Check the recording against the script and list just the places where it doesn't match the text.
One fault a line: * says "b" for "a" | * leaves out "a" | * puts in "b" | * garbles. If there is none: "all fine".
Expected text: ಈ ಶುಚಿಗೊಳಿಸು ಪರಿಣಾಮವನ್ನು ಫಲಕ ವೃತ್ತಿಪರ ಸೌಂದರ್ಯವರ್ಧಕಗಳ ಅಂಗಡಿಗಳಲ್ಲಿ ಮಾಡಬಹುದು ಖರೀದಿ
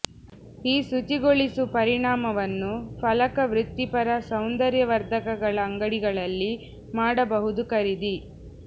all fine